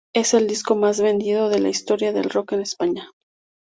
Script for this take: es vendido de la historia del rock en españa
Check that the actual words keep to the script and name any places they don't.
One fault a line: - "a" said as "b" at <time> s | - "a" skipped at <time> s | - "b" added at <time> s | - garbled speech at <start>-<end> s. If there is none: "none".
- "el disco más" added at 0.3 s